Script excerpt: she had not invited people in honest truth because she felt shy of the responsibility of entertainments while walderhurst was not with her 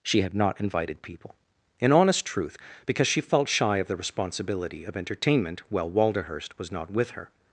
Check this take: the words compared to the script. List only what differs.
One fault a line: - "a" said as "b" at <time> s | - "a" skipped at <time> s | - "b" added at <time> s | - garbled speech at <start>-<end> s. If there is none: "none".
- "entertainments" said as "entertainment" at 5.0 s